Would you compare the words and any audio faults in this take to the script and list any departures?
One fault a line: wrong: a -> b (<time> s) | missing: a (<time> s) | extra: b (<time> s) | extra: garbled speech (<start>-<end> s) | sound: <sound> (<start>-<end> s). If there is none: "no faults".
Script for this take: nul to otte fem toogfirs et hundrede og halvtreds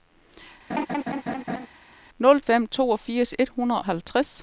sound: laugh (0.7-1.7 s)
missing: to otte (2.4 s)
missing: og (3.8 s)